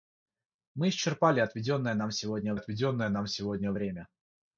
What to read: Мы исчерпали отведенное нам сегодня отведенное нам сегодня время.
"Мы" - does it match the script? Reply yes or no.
yes